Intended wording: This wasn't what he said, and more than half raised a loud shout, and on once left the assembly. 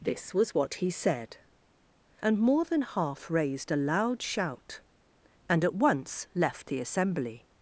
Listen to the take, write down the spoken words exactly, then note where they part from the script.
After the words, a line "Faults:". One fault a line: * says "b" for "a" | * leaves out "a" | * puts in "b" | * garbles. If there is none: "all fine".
This was what he said, and more than half raised a loud shout, and at once left the assembly.
Faults:
* says "was" for "wasn't"
* says "at" for "on"